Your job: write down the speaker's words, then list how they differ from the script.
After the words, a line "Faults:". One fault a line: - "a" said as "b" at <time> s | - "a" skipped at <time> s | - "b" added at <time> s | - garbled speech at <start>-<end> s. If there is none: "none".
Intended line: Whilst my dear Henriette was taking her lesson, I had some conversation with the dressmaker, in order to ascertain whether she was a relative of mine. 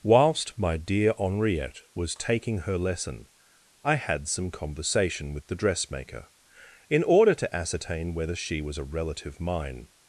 Whilst my dear Henriette was taking her lesson, I had some conversation with the dressmaker, in order to ascertain whether she was a relative mine.
Faults:
- "of" skipped at 9.4 s